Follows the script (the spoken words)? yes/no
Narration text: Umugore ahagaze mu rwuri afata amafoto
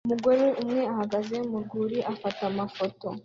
no